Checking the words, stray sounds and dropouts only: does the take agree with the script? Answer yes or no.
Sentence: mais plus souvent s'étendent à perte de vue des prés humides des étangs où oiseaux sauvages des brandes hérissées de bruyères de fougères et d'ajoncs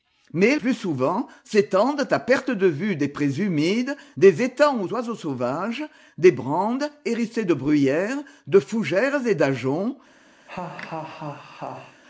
no